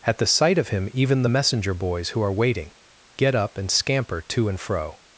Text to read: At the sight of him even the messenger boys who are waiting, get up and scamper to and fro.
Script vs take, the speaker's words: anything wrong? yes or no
no